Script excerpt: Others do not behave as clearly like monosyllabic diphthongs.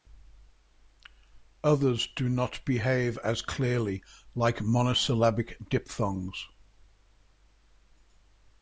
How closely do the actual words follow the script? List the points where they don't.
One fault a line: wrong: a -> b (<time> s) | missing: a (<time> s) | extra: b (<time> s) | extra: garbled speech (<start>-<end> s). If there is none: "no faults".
no faults